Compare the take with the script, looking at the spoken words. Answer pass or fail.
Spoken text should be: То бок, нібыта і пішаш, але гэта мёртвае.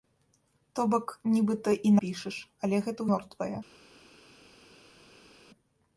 pass